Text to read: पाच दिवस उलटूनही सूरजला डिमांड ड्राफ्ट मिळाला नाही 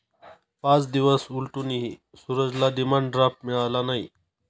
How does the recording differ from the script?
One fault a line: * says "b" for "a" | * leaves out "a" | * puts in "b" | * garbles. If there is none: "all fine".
all fine